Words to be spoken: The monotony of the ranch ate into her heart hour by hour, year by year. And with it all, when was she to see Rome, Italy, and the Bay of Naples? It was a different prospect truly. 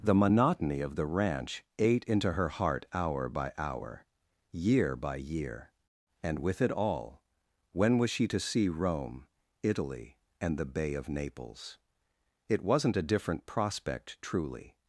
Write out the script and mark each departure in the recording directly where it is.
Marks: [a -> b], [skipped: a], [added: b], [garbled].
The monotony of the ranch ate into her heart hour by hour, year by year. And with it all, when was she to see Rome, Italy, and the Bay of Naples? It [was -> wasn't] a different prospect truly.